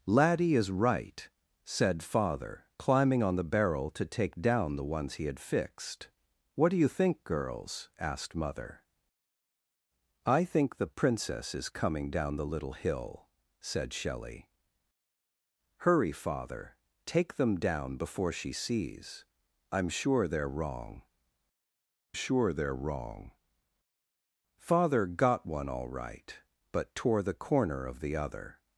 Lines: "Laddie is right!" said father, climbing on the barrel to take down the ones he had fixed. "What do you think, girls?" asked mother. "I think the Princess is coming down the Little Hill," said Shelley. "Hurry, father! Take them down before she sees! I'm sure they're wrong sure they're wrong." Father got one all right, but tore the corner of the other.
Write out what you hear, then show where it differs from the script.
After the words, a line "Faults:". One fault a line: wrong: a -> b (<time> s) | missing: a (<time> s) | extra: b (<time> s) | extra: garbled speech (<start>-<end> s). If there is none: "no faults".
"Laddie is right!" said father, climbing on the barrel to take down the ones he had fixed. "What do you think, girls?" asked mother. "I think the Princess is coming down the Little Hill," said Shelley. "Hurry, father! Take them down before she sees! I'm sure they're wrong sure they're wrong." Father got one all right, but tore the corner of the other.
Faults:
no faults